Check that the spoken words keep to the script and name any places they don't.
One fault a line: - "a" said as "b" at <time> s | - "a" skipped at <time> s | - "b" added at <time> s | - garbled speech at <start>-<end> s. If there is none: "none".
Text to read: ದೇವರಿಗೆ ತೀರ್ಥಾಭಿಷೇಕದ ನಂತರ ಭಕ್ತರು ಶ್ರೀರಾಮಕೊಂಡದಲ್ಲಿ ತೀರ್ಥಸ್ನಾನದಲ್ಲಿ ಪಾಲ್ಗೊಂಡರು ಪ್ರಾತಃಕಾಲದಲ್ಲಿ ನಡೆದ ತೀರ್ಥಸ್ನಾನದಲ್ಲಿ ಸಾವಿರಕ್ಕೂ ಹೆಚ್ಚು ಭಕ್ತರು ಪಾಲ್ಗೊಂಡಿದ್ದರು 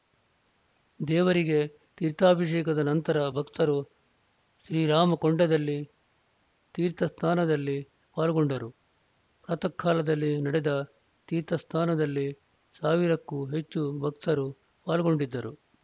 none